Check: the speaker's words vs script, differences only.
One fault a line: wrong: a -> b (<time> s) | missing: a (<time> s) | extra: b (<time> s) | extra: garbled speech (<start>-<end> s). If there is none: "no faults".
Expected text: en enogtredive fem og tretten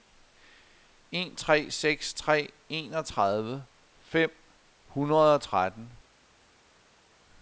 extra: tre seks tre (1.4 s)
extra: hundrede (4.9 s)